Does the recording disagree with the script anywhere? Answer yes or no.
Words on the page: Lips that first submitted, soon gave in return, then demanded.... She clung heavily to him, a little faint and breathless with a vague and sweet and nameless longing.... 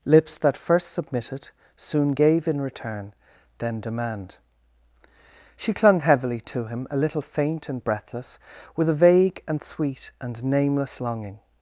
yes